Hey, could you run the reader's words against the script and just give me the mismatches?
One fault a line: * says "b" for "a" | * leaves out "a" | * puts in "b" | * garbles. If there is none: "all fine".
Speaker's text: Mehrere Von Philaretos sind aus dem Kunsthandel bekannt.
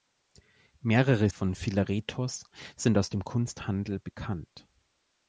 all fine